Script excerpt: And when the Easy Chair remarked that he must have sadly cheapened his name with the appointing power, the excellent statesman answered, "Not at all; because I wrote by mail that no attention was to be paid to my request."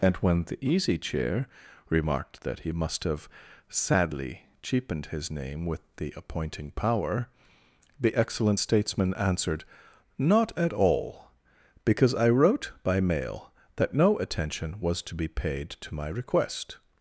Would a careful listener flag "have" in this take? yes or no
no